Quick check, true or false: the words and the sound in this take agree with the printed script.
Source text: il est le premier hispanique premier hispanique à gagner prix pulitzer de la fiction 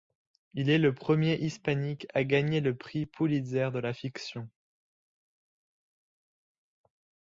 false